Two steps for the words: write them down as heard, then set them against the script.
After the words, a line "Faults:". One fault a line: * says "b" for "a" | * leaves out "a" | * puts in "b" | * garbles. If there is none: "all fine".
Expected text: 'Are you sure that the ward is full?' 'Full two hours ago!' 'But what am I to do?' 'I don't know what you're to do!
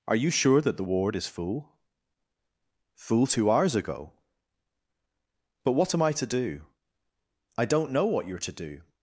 'Are you sure that the ward is full?' 'Full two hours ago!' 'But what am I to do?' 'I don't know what you're to do!
Faults:
all fine